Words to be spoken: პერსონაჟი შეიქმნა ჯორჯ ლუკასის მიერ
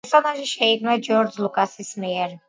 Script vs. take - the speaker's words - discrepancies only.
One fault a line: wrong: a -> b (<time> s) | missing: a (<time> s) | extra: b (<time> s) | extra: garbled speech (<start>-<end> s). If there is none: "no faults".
no faults